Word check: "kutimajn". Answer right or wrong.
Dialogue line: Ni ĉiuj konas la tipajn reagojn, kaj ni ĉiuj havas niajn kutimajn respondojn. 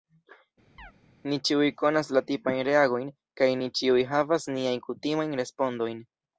right